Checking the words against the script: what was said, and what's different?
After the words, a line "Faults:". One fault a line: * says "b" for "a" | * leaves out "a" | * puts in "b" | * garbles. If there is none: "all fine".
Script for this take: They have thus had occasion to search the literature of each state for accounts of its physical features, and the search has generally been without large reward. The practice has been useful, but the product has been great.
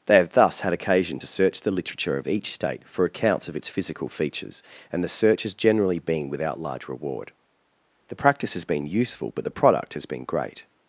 They have thus had occasion to search the literature of each state for accounts of its physical features, and the search has generally been without large reward. The practice has been useful, but the product has been great.
Faults:
all fine